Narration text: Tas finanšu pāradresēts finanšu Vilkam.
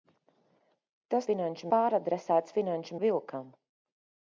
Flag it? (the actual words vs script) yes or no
no